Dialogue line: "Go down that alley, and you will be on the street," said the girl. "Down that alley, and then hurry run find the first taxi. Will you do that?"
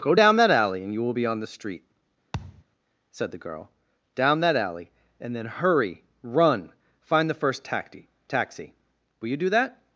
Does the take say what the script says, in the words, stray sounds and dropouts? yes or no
no